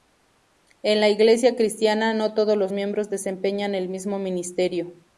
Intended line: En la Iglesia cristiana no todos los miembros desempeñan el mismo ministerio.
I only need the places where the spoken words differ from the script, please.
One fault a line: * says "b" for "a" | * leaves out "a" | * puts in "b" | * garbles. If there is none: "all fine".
all fine